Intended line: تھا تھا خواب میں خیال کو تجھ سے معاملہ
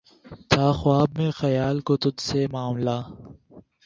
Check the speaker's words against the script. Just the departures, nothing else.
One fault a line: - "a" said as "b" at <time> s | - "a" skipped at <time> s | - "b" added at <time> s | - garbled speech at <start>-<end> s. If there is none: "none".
- "تھا" skipped at 0.7 s